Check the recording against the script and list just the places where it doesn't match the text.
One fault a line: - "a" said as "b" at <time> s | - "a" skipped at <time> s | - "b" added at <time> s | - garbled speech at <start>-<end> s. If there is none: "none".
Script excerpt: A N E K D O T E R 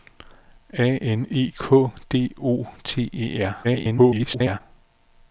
- garbled speech at 3.6-4.6 s